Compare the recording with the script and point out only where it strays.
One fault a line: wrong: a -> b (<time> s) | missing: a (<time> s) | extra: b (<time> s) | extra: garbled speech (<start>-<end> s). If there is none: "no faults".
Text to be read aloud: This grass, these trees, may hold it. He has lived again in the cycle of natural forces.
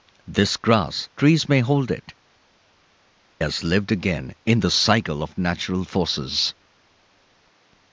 missing: these (1.1 s)
missing: He (2.1 s)